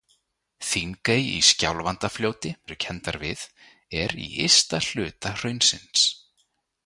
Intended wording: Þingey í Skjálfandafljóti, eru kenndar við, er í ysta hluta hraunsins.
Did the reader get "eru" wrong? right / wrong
right